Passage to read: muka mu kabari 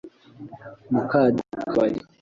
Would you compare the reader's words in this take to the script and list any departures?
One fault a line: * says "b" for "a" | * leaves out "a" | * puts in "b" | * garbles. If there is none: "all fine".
all fine